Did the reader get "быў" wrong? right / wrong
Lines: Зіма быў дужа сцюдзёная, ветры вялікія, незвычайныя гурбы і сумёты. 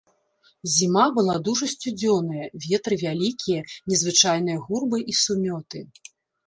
wrong